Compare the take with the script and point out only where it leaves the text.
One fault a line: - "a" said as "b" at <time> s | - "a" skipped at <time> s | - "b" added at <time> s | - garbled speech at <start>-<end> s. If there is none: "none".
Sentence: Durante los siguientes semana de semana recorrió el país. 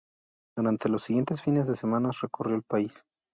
- "semana" said as "fines" at 1.4 s